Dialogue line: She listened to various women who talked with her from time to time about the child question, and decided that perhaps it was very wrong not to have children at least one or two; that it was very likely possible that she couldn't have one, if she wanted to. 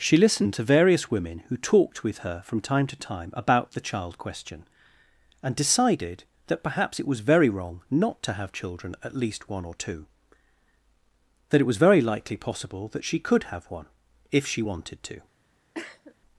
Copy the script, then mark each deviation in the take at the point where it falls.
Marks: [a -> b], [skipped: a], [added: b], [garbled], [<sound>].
She listened to various women who talked with her from time to time about the child question, and decided that perhaps it was very wrong not to have children at least one or two; that it was very likely possible that she [couldn't -> could] have one, if she wanted to. [cough]